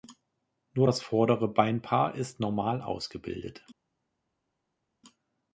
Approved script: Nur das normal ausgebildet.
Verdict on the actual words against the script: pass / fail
fail